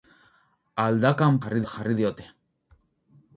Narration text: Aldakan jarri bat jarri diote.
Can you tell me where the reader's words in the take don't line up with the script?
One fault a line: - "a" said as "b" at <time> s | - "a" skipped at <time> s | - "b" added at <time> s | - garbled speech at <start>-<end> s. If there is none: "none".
none